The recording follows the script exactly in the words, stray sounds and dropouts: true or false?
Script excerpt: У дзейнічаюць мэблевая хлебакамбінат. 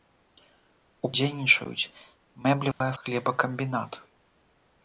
false